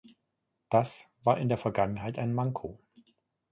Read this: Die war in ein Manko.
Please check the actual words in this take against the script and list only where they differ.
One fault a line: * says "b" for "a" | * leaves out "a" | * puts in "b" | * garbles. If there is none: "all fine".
* says "Das" for "Die"
* puts in "der Vergangenheit"